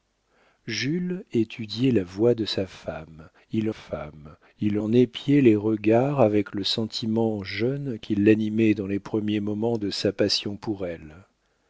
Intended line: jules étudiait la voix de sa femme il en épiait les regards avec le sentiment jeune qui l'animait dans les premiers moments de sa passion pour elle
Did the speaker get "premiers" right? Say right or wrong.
right